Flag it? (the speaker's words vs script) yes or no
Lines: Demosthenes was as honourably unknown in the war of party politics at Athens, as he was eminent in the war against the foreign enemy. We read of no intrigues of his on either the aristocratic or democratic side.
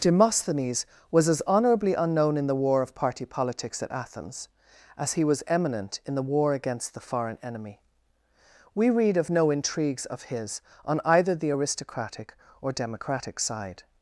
no